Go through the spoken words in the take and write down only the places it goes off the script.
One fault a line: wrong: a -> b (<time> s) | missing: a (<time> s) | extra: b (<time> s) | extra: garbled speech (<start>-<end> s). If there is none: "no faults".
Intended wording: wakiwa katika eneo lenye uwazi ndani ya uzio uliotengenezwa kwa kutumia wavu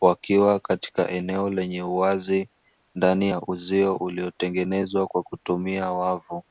no faults